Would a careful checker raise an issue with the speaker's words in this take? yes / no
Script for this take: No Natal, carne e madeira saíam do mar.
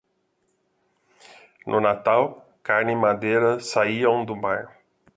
no